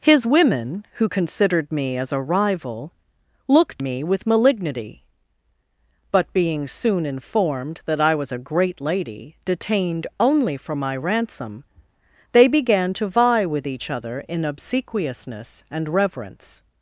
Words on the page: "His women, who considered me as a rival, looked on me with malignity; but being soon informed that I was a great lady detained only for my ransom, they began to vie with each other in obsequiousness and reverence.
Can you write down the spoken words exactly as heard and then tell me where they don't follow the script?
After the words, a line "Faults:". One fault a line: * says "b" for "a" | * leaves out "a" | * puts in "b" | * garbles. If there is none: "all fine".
"His women, who considered me as a rival, looked me with malignity; but being soon informed that I was a great lady detained only for my ransom, they began to vie with each other in obsequiousness and reverence.
Faults:
* leaves out "on"